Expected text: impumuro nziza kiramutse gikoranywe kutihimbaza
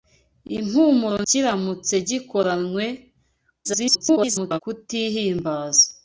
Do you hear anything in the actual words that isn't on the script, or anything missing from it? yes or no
yes